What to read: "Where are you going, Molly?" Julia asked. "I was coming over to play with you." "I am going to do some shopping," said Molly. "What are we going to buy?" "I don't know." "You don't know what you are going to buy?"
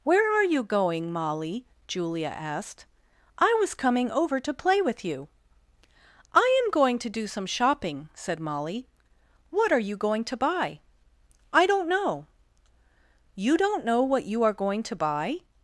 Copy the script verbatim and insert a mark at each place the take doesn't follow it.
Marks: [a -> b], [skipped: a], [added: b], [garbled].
"Where are you going, Molly?" Julia asked. "I was coming over to play with you." "I am going to do some shopping," said Molly. "What are [we -> you] going to buy?" "I don't know." "You don't know what you are going to buy?"